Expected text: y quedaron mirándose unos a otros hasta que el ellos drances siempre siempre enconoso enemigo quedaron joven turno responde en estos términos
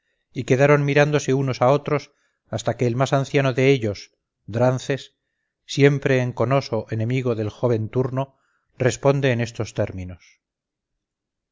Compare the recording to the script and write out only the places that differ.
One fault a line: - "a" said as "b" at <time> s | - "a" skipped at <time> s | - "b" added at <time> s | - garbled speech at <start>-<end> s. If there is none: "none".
- "más anciano de" added at 3.0 s
- "siempre" skipped at 6.2 s
- "quedaron" said as "del" at 7.3 s